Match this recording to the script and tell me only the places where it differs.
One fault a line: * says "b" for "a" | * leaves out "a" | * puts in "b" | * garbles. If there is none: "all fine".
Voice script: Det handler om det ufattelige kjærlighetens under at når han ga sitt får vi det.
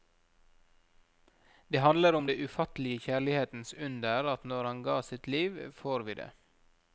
* puts in "liv"